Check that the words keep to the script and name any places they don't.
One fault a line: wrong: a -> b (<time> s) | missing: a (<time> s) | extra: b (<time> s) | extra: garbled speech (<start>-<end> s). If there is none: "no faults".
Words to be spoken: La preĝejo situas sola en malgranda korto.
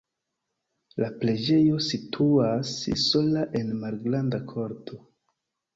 no faults